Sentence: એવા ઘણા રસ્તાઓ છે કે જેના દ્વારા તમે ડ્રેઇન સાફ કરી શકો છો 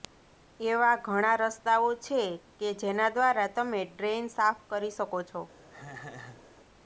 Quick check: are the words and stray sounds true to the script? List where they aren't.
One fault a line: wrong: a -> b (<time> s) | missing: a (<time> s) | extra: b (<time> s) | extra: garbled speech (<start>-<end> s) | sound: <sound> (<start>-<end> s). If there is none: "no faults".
sound: laugh (5.7-6.5 s)